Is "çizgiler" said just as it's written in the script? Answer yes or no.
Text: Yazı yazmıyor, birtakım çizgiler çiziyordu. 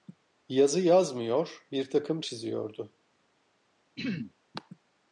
no